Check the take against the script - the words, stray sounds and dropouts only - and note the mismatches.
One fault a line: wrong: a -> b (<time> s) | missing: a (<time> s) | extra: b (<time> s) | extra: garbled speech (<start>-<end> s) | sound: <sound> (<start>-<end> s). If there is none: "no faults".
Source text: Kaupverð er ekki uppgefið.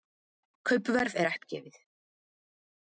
missing: ekki (1.3 s)